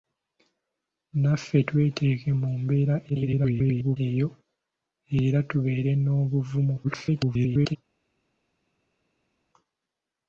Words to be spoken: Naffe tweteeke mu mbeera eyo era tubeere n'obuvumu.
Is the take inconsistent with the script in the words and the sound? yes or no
yes